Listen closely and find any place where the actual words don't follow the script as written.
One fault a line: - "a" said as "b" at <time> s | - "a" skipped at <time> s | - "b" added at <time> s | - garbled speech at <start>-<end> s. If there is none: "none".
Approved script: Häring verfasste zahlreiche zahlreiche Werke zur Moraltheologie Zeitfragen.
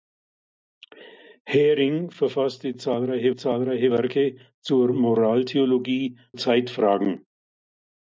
none